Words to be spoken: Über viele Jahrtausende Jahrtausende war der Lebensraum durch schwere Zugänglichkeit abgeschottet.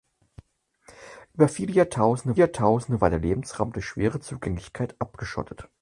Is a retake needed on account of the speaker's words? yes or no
no